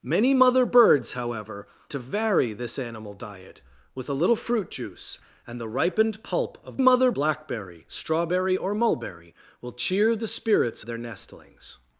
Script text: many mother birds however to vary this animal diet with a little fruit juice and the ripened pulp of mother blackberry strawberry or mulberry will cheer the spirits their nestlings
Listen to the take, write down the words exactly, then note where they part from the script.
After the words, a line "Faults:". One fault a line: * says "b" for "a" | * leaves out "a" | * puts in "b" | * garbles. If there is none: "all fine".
many mother birds however to vary this animal diet with a little fruit juice and the ripened pulp of mother blackberry strawberry or mulberry will cheer the spirits their nestlings
Faults:
all fine